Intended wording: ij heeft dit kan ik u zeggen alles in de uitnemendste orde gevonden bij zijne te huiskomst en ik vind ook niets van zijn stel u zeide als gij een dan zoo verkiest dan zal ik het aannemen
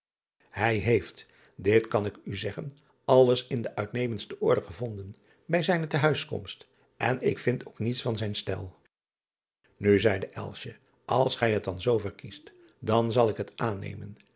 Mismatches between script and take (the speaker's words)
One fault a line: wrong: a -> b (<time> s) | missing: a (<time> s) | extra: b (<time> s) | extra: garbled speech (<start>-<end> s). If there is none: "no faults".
wrong: een -> het (11.5 s)